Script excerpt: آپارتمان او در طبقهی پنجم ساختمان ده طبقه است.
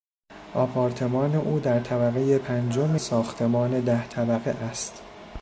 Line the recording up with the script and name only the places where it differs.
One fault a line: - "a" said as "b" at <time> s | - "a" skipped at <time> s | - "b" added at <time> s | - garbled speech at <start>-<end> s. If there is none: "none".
none